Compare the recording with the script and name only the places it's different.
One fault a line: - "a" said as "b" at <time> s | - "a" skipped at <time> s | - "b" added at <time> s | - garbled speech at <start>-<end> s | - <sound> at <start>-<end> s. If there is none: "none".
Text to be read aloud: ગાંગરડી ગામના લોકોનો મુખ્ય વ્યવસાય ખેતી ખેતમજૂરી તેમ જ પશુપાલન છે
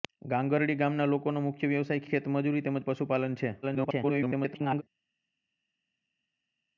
- "ખેતી" skipped at 2.0 s
- garbled speech at 3.6-4.8 s